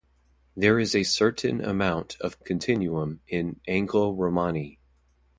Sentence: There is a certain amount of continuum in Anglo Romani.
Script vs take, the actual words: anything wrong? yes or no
no